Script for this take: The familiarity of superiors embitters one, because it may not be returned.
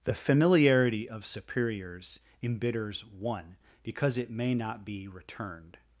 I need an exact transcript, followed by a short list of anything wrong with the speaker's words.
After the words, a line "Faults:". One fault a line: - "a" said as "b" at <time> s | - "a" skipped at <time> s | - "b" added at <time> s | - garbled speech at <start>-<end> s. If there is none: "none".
The familiarity of superiors embitters one, because it may not be returned.
Faults:
none